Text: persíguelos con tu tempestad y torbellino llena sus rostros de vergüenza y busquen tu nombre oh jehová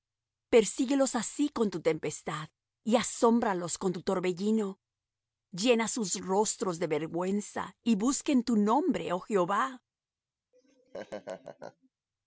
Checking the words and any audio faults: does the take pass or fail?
fail